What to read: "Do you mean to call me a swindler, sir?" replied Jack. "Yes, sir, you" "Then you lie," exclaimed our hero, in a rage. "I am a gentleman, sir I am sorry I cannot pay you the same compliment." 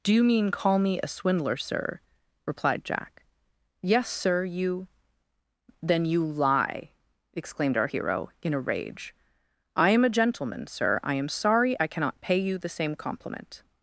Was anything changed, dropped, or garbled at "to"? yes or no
yes